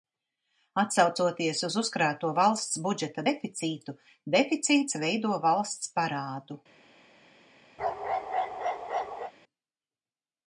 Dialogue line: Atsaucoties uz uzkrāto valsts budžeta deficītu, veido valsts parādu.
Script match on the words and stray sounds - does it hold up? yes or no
no